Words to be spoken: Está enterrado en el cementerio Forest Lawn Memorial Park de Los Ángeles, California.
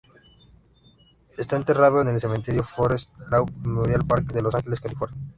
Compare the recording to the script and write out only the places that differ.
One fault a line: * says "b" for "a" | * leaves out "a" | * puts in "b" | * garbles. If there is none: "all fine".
all fine